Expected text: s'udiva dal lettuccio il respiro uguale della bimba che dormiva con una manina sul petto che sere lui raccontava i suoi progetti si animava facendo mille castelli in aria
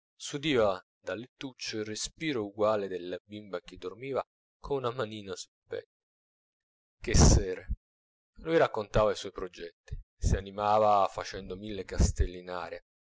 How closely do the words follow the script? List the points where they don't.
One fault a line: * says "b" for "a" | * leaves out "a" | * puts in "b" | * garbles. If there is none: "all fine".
all fine